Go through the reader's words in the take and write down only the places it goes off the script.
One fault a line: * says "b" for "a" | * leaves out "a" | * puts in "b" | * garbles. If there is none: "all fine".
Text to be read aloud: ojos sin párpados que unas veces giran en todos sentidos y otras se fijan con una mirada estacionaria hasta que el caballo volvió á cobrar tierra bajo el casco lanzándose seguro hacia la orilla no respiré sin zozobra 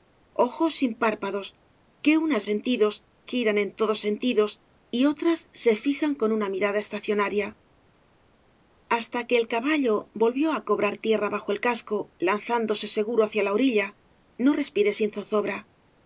* says "sentidos" for "veces"